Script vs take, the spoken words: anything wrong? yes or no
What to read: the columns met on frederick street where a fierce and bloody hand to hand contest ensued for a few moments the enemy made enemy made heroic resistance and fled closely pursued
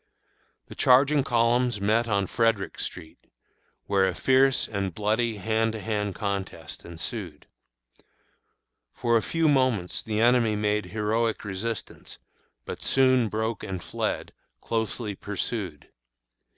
yes